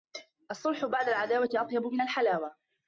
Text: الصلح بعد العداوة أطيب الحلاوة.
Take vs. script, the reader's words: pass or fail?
fail